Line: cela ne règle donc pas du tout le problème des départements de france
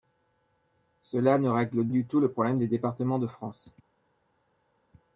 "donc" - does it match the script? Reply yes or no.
no